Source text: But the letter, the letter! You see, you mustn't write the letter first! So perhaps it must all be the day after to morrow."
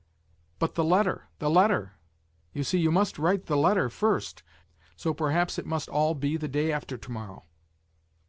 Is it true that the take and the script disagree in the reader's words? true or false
true